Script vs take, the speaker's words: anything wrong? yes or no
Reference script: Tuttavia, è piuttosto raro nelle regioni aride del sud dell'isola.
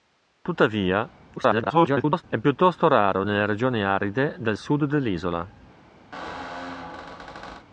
yes